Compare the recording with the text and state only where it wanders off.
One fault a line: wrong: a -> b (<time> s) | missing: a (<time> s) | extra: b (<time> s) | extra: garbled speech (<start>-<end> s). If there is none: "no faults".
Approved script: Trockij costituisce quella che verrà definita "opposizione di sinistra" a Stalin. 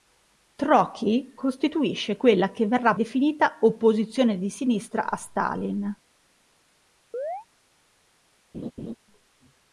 no faults